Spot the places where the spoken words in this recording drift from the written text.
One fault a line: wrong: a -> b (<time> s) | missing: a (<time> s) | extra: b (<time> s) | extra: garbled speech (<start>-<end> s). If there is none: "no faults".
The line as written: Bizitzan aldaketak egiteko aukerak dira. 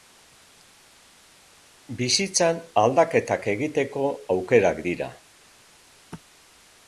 no faults